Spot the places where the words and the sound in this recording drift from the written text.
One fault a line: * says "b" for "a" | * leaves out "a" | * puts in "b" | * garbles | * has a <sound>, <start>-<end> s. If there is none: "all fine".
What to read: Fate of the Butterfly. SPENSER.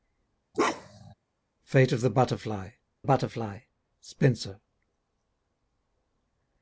* has a bark, 0.5-1.1 s
* puts in "Butterfly"